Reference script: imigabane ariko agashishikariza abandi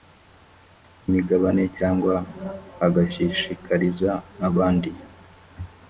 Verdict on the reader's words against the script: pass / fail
fail